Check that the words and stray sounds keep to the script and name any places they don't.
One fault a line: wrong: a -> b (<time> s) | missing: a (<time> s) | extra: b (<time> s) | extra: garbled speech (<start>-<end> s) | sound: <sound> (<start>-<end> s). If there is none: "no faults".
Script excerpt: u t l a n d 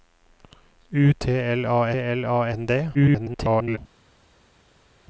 extra: l a (1.9 s)
extra: garbled speech (2.9-3.8 s)